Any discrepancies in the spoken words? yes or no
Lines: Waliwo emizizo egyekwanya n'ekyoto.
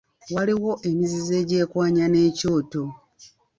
no